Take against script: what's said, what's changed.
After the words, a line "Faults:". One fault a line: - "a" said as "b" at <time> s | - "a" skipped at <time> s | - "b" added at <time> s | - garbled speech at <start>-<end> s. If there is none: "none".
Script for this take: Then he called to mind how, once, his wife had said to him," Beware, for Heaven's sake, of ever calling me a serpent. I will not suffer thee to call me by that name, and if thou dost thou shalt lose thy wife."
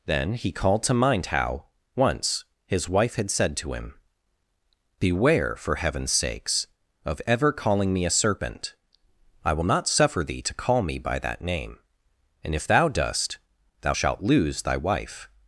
Then he called to mind how, once, his wife had said to him," Beware, for Heaven's sakes, of ever calling me a serpent. I will not suffer thee to call me by that name, and if thou dost thou shalt lose thy wife."
Faults:
- "sake" said as "sakes" at 6.1 s